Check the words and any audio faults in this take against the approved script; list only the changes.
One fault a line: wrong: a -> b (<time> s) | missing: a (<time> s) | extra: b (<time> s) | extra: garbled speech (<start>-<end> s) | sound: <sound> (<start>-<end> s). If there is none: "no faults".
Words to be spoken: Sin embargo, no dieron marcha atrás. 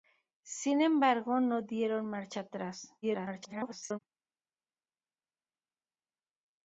extra: garbled speech (3.0-4.0 s)